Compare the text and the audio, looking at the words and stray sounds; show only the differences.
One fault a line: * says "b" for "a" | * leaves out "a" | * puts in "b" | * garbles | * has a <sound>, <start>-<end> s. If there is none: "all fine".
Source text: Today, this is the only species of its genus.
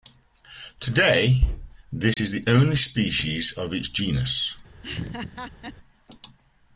* has a dropout, 2.1-2.2 s
* has a laugh, 4.8-5.7 s